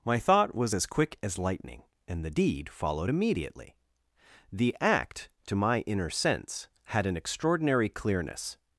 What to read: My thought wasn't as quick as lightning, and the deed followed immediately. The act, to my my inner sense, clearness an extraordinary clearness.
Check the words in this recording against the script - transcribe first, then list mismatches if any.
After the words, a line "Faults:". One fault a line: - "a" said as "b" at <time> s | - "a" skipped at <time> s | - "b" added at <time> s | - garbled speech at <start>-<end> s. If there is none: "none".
My thought was as quick as lightning, and the deed followed immediately. The act, to my inner sense, had an extraordinary clearness.
Faults:
- "wasn't" said as "was" at 0.6 s
- "my" skipped at 5.8 s
- "clearness" said as "had" at 6.9 s